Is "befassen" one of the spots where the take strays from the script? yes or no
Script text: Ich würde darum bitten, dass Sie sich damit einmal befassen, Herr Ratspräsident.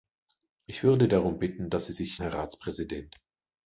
yes